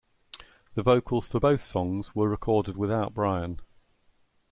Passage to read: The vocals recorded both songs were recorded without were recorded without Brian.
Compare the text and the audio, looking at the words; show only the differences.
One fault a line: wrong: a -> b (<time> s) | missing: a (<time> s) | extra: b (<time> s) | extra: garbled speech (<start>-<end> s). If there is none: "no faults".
wrong: recorded -> for (1.3 s)
missing: were recorded without (3.1 s)